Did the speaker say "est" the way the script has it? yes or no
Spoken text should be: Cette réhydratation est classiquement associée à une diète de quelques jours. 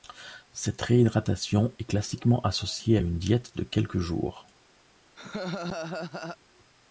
yes